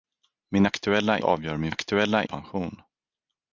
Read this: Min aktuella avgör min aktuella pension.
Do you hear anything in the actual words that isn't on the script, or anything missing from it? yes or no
no